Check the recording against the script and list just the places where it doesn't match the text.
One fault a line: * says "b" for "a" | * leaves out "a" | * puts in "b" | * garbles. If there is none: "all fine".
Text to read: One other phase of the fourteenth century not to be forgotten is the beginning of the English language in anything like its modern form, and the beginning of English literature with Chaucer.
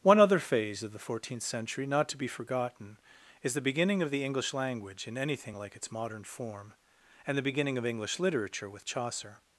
all fine